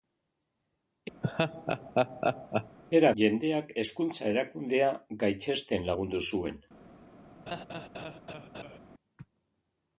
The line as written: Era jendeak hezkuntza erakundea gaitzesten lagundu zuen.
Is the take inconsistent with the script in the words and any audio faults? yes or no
yes